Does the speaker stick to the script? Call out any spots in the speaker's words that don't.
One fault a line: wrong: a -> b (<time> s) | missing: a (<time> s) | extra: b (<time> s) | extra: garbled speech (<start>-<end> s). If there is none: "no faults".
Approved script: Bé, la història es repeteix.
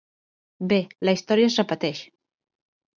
no faults